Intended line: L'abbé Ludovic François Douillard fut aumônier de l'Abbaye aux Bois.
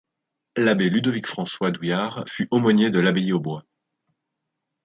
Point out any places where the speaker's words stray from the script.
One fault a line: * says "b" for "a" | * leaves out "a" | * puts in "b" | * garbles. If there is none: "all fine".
all fine